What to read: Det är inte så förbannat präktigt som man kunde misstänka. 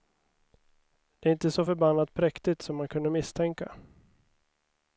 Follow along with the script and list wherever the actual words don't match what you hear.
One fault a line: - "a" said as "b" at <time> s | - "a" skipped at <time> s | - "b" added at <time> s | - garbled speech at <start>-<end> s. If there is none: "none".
none